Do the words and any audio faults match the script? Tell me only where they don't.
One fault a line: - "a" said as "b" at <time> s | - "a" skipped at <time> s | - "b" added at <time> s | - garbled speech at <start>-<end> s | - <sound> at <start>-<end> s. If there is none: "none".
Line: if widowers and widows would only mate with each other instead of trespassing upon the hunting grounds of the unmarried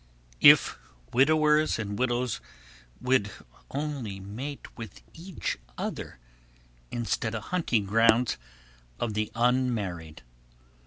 - "of trespassing upon" skipped at 7.3 s